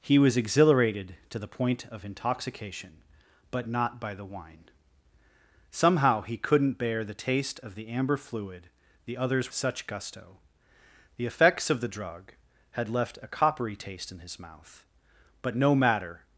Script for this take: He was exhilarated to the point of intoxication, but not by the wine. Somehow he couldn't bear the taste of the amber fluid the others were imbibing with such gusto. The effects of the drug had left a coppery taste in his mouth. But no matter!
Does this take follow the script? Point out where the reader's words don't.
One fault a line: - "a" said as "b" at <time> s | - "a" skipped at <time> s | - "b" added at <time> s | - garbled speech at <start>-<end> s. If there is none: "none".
- "were imbibing with" skipped at 9.5 s